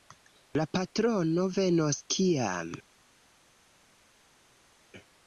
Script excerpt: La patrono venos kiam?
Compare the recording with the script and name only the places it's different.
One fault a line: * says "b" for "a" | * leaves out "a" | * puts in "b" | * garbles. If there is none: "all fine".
all fine